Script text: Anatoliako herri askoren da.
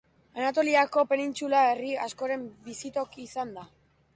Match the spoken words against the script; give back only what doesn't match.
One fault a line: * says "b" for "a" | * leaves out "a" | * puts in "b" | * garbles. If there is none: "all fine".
* puts in "penintsula"
* puts in "bizitoki izan"